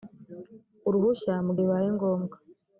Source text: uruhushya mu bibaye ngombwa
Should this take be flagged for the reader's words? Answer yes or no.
no